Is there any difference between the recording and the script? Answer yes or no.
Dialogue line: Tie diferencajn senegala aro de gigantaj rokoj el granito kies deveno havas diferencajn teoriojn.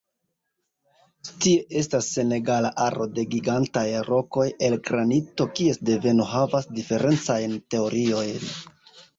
yes